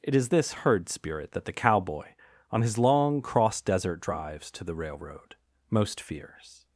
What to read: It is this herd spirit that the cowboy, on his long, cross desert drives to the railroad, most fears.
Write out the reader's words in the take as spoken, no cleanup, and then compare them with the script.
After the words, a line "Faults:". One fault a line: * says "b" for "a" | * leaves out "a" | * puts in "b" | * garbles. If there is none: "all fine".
It is this herd spirit that the cowboy, on his long, cross desert drives to the railroad, most fears.
Faults:
all fine